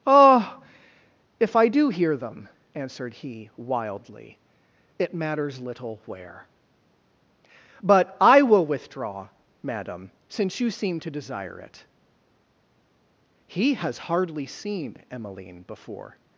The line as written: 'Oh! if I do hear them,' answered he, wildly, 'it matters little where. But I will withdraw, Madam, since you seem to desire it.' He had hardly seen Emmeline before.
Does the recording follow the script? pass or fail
fail